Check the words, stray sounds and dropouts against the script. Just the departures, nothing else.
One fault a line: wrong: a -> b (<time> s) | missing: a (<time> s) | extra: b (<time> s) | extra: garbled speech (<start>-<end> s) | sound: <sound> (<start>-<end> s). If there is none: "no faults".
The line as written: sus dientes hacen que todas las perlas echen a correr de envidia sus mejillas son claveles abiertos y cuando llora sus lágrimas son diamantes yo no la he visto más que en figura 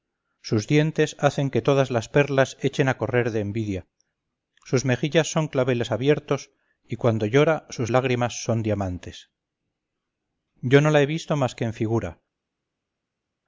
no faults